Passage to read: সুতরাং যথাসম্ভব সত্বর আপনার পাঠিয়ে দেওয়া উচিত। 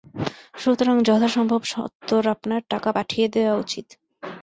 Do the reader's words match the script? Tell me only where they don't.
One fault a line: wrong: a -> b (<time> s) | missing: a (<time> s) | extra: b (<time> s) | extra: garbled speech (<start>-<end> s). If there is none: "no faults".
extra: টাকা (2.7 s)